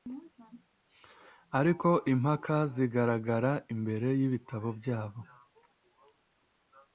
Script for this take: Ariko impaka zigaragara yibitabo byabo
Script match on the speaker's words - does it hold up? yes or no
no